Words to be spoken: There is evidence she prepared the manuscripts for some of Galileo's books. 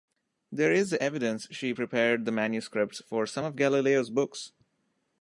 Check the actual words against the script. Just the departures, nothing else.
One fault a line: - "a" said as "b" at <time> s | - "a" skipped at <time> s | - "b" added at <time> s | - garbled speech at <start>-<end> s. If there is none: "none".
none